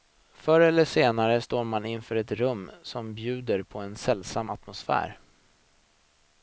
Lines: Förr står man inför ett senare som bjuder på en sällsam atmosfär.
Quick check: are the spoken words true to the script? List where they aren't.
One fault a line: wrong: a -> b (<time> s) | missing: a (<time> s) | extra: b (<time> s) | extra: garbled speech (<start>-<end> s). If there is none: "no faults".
extra: eller senare (0.6 s)
wrong: senare -> rum (2.3 s)